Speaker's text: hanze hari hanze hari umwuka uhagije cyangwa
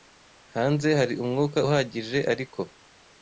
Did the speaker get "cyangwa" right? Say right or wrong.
wrong